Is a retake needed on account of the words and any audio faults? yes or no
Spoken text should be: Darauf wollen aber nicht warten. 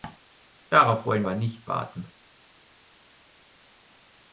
no